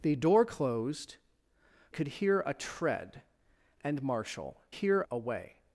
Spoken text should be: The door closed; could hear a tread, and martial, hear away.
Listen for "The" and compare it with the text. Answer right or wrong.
right